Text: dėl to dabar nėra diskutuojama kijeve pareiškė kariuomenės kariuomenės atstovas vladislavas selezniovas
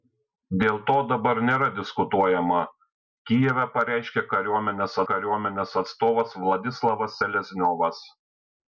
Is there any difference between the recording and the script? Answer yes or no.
no